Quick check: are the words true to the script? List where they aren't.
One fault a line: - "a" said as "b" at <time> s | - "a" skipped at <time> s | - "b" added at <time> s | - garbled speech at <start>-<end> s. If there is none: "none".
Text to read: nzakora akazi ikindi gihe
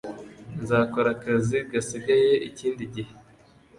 - "gasigaye" added at 1.7 s